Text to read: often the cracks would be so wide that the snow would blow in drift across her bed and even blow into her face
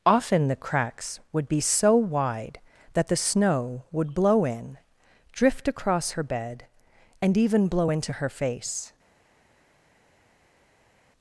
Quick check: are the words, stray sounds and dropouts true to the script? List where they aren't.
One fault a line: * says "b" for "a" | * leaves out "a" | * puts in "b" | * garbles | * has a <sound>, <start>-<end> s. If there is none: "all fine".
all fine